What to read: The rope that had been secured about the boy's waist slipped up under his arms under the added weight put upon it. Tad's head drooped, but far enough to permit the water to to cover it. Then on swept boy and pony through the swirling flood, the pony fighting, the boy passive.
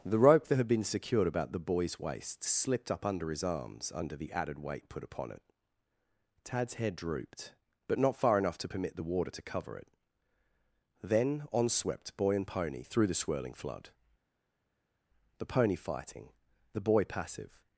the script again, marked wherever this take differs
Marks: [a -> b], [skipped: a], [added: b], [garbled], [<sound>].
The rope that had been secured about the boy's waist slipped up under his arms under the added weight put upon it. Tad's head drooped, but [added: not] far enough to permit the water to [skipped: to] cover it. Then on swept boy and pony through the swirling flood, the pony fighting, the boy passive.